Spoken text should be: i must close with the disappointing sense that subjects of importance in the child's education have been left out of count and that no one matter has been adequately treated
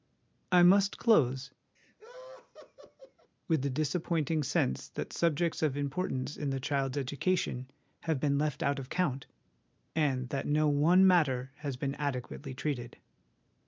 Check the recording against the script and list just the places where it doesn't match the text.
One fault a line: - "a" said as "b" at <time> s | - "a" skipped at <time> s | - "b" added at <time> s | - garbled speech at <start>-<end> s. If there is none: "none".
none